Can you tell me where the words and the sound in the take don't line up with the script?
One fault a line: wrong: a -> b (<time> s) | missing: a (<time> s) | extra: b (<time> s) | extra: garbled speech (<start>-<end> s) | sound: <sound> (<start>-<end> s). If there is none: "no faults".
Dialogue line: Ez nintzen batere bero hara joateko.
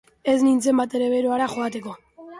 no faults